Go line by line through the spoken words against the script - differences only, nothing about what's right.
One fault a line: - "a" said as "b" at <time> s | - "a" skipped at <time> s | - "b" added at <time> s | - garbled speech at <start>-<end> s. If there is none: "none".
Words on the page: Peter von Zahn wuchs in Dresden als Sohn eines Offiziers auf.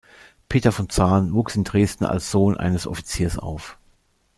none